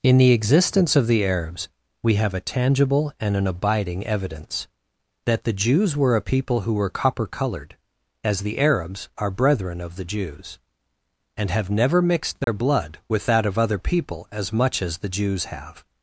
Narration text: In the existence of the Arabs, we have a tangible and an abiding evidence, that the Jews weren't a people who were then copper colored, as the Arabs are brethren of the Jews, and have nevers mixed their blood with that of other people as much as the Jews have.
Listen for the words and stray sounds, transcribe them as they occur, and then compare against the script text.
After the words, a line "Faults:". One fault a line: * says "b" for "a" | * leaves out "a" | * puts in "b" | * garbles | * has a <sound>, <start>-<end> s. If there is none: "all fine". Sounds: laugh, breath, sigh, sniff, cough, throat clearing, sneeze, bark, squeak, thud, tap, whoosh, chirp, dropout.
In the existence of the Arabs, we have a tangible and an abiding evidence, that the Jews were a people who were copper colored, as the Arabs are brethren of the Jews, and have never mixed their blood with that of other people as much as the Jews have.
Faults:
* says "were" for "weren't"
* leaves out "then"
* says "never" for "nevers"
* has a dropout, 12.4-12.5 s